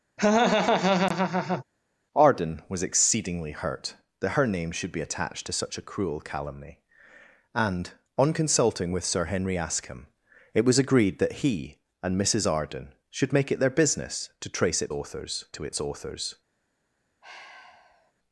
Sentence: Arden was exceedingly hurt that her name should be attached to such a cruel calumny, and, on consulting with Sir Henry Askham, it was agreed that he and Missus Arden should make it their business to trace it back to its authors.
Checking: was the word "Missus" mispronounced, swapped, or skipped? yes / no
no